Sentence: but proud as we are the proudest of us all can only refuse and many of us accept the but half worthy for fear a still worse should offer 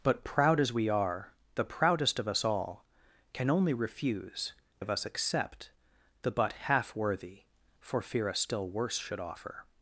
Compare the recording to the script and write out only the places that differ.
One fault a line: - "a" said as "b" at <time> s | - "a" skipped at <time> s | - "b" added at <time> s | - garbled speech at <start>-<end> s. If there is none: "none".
- "and many" skipped at 4.5 s